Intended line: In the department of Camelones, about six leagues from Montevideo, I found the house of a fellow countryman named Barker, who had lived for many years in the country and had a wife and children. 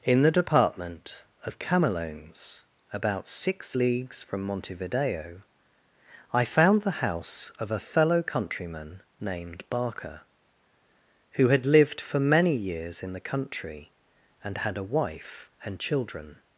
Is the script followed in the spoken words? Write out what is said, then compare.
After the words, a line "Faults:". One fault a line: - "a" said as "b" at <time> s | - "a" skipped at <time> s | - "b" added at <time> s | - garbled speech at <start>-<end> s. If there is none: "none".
In the department of Camelones, about six leagues from Montevideo, I found the house of a fellow countryman named Barker, who had lived for many years in the country and had a wife and children.
Faults:
none